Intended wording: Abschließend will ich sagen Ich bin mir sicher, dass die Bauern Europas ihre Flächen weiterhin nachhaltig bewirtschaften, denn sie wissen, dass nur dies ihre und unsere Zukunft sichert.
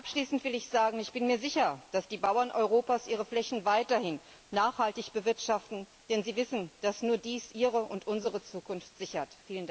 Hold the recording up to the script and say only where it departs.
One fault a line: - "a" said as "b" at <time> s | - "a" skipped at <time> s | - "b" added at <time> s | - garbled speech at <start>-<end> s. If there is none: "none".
none